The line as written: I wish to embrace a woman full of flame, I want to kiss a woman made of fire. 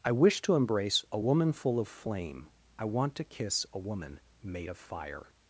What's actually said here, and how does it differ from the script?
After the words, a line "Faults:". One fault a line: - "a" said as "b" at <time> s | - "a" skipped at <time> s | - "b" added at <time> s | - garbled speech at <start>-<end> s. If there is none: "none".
I wish to embrace a woman full of flame, I want to kiss a woman made of fire.
Faults:
none